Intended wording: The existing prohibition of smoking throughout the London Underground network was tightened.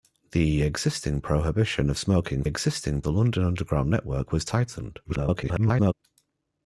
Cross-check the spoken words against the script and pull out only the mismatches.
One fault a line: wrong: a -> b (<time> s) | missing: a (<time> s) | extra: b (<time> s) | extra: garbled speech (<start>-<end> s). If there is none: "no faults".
wrong: throughout -> existing (2.4 s)
extra: garbled speech (5.0-5.9 s)